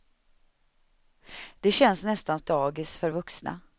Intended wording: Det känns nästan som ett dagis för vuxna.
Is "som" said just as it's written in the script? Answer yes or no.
no